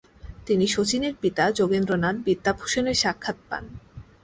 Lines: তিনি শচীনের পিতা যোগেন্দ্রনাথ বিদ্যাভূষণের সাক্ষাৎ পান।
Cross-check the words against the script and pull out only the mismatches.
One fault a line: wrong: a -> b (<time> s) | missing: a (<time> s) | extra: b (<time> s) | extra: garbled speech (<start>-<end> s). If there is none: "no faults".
no faults